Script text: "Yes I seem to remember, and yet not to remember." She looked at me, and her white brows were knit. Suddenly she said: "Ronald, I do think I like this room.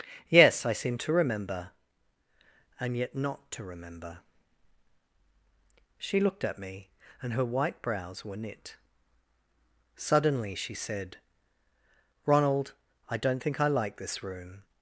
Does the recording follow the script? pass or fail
fail